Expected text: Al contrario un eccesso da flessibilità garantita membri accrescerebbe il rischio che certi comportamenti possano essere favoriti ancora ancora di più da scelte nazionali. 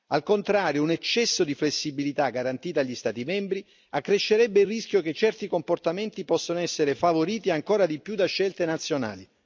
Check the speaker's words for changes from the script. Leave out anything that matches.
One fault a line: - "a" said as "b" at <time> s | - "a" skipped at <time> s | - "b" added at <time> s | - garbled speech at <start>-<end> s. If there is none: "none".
- "da" said as "di" at 1.4 s
- "agli Stati" added at 2.8 s
- "ancora" skipped at 7.8 s